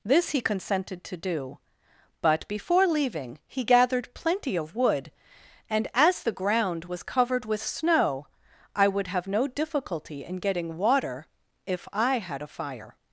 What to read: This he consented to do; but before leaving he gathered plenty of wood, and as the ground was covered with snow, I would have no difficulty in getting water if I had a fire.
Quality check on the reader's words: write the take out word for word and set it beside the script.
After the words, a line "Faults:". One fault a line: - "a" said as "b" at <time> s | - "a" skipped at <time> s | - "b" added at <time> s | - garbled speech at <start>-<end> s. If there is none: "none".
This he consented to do; but before leaving he gathered plenty of wood, and as the ground was covered with snow, I would have no difficulty in getting water if I had a fire.
Faults:
none